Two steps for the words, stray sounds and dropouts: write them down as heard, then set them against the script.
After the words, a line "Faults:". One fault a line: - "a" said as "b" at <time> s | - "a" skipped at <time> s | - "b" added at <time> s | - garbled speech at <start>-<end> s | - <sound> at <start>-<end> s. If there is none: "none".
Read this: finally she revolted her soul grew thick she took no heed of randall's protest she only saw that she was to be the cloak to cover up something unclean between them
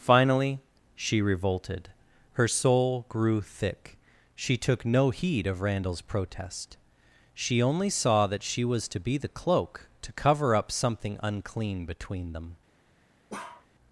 finally she revolted her soul grew thick she took no heed of randall's protest she only saw that she was to be the cloak to cover up something unclean between them
Faults:
- bark at 13.3-13.7 s